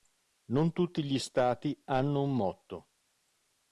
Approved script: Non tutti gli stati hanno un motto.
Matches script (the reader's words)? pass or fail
pass